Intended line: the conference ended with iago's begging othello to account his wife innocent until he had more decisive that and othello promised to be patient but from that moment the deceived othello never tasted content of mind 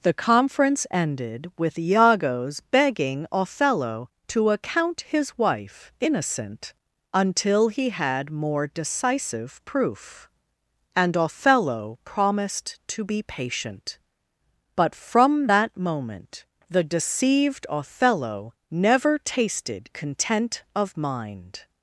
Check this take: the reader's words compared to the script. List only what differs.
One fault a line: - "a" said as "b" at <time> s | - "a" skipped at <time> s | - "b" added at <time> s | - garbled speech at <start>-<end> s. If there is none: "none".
- "that" said as "proof" at 9.6 s